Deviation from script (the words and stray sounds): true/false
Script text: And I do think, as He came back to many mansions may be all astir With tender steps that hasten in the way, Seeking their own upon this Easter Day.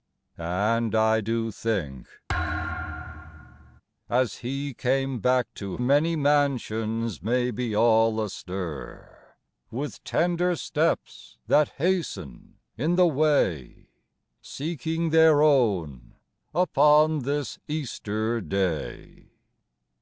true